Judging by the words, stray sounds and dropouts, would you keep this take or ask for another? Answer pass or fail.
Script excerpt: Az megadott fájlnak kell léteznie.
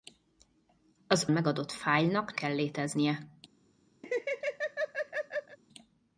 fail